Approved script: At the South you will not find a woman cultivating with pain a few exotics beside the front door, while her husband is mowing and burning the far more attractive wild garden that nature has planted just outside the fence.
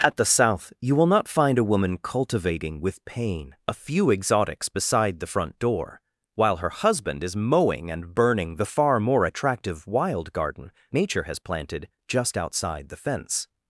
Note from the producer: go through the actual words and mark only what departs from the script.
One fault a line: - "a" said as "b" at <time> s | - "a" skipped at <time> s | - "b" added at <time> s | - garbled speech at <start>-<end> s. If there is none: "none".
- "that" skipped at 10.7 s